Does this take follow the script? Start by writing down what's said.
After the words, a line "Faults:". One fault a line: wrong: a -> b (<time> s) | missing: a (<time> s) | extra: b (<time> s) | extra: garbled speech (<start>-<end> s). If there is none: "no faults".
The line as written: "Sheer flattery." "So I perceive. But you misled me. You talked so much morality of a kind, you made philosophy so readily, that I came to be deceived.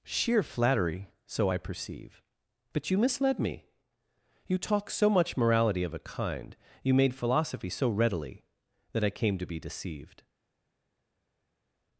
"Sheer flattery." "So I perceive. But you misled me. You talk so much morality of a kind, you made philosophy so readily, that I came to be deceived.
Faults:
wrong: talked -> talk (4.6 s)